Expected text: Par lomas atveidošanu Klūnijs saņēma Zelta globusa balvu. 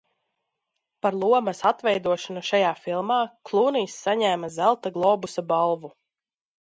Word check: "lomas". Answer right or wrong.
right